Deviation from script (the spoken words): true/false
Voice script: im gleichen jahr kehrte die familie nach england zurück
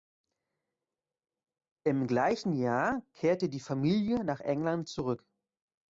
false